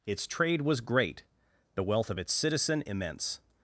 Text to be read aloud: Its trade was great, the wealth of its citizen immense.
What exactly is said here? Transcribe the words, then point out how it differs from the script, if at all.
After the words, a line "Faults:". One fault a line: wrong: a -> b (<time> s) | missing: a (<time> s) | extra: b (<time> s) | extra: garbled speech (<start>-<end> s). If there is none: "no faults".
Its trade was great, the wealth of its citizen immense.
Faults:
no faults